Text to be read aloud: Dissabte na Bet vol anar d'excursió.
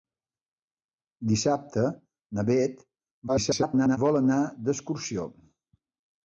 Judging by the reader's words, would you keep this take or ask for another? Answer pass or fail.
fail